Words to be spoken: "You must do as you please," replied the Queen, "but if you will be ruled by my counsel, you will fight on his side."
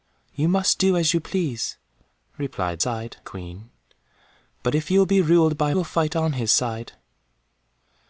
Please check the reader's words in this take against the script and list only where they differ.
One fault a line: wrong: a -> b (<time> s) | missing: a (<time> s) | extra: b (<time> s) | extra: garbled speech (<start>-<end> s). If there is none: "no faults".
wrong: the -> side (2.8 s)
missing: my counsel you (5.7 s)